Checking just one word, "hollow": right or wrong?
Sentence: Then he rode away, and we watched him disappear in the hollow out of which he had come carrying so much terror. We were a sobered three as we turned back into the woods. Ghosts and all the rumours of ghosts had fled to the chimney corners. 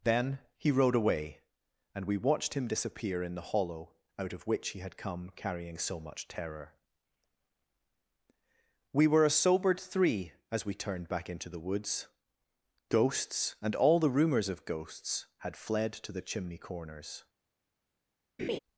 right